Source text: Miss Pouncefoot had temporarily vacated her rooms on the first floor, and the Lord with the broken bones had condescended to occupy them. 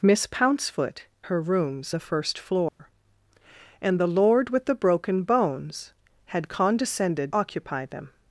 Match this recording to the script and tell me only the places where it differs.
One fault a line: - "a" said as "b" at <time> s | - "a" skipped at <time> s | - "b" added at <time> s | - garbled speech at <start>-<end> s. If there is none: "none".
- "had temporarily vacated" skipped at 1.1 s
- "on" skipped at 2.0 s
- "to" skipped at 7.3 s